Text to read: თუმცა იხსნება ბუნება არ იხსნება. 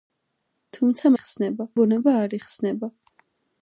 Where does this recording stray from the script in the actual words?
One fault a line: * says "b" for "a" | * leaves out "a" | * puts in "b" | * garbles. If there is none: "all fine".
all fine